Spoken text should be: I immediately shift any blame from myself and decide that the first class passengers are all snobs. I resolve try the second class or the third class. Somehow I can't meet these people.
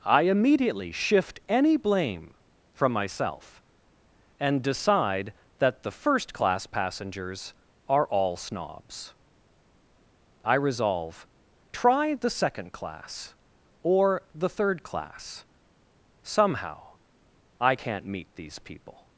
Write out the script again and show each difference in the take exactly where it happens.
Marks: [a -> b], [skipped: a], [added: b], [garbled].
I immediately shift any blame from myself and decide that the first class passengers are all snobs. I resolve try the second class or the third class. Somehow I can't meet these people.